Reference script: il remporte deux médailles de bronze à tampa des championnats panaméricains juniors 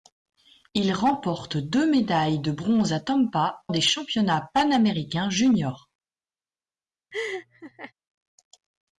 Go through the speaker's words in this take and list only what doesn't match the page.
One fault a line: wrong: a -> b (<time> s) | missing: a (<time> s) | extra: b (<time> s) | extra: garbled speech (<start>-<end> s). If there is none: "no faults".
no faults